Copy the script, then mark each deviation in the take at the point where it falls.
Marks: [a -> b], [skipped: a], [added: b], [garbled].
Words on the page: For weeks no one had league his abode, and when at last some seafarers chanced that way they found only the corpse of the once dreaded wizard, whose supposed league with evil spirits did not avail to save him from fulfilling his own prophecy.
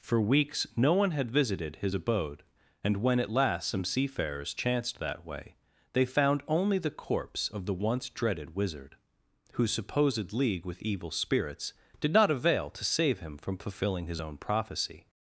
For weeks no one had [league -> visited] his abode, and when at last some seafarers chanced that way they found only the corpse of the once dreaded wizard, whose supposed league with evil spirits did not avail to save him from fulfilling his own prophecy.